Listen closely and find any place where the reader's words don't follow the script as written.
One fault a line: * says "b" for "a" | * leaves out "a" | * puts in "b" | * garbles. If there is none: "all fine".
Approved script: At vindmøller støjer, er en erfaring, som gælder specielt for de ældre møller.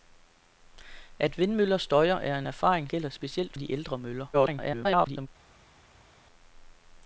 * leaves out "som"
* leaves out "for"
* garbles